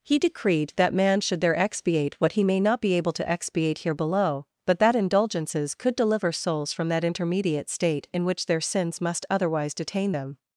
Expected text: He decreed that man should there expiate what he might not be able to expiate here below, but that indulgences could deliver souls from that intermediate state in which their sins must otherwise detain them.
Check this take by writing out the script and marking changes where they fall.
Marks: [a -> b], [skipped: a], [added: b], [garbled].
He decreed that man should there expiate what he [might -> may] not be able to expiate here below, but that indulgences could deliver souls from that intermediate state in which their sins must otherwise detain them.